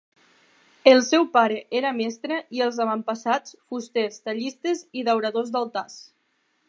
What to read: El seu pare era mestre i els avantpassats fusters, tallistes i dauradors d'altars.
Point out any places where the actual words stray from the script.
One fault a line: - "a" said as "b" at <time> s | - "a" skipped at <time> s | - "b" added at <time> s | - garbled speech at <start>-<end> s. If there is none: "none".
none